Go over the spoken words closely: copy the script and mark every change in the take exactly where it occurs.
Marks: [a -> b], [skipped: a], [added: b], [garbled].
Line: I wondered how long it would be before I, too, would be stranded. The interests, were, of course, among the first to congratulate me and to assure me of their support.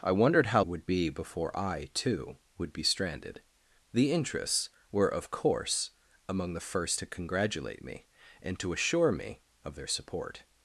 I wondered how [skipped: long it] would be before I, too, would be stranded. The interests, were, of course, among the first to congratulate me and to assure me of their support.